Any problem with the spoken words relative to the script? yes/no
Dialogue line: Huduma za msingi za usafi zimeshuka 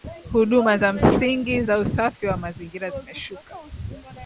yes